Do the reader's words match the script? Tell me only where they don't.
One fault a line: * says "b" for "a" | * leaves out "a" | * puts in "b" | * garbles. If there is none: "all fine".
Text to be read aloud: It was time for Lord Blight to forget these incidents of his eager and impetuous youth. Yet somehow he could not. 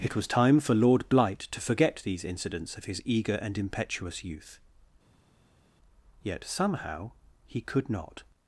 all fine